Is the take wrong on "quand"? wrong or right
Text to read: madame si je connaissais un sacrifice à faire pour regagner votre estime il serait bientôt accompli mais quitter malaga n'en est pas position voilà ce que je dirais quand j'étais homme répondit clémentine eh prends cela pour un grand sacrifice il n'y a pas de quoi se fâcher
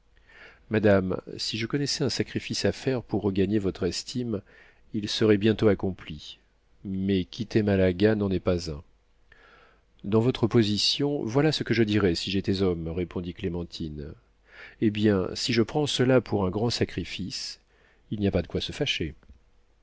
wrong